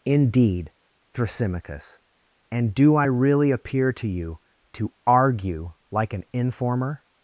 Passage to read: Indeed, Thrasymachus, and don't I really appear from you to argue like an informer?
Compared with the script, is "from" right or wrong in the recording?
wrong